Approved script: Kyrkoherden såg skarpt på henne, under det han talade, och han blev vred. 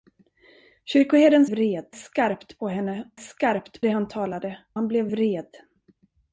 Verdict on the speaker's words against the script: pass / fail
fail